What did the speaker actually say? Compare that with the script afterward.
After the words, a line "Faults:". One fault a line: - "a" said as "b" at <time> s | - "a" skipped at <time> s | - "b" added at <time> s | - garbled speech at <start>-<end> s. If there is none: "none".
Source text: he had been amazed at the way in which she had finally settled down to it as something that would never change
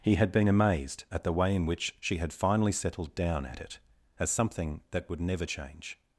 he had been amazed at the way in which she had finally settled down at it as something that would never change
Faults:
- "to" said as "at" at 3.5 s